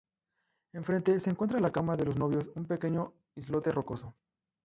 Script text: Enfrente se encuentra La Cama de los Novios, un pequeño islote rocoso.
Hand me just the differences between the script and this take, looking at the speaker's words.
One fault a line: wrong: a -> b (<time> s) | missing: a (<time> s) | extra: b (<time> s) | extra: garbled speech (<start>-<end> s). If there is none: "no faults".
no faults